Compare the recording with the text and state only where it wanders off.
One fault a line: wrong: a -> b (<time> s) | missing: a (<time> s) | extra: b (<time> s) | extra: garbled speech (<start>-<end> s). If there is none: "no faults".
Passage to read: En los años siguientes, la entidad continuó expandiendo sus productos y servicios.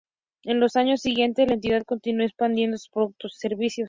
no faults